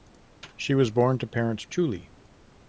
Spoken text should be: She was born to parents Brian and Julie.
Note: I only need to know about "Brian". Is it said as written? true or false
false